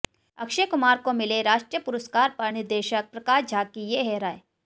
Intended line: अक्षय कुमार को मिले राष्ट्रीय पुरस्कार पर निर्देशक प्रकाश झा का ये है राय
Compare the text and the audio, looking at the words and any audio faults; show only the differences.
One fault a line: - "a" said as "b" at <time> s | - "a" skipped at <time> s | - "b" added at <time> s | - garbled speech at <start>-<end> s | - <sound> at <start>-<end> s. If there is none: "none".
- "का" said as "की" at 3.6 s